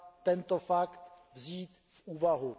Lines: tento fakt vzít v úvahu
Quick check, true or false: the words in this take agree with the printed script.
true